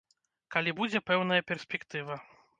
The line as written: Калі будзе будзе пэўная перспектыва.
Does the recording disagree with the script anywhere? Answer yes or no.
yes